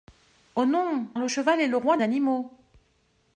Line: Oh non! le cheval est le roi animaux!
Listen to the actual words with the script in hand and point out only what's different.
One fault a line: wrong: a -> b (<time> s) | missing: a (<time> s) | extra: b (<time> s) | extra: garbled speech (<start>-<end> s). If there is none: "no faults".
no faults